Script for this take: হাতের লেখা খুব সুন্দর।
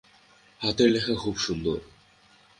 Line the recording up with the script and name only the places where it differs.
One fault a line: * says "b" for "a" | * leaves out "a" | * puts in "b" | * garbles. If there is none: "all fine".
all fine